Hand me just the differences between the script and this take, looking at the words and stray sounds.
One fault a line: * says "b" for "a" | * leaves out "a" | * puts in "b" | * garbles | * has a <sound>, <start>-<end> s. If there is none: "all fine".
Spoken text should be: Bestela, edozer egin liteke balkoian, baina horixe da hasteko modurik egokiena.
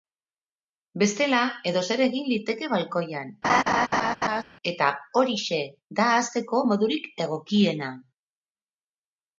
* has a laugh, 3.4-4.4 s
* says "eta" for "baina"